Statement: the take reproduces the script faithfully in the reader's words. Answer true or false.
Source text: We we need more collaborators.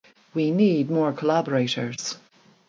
false